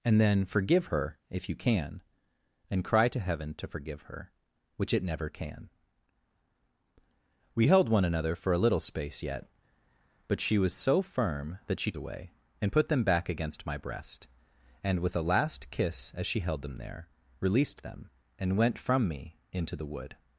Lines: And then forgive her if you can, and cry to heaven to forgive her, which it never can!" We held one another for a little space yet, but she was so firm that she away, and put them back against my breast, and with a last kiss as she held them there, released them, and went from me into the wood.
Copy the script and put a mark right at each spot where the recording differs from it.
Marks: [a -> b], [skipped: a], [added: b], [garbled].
And then forgive her if you can, and cry to heaven to forgive her, which it never can!" We held one another for a little space yet, but she was so firm that she away, and put them back against my breast, and with a last kiss as she held them there, released them, and went from me into the wood.